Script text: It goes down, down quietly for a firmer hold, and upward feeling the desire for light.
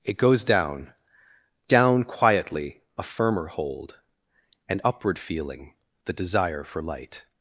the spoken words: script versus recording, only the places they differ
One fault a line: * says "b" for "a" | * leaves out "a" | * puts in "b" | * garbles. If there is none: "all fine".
* leaves out "for"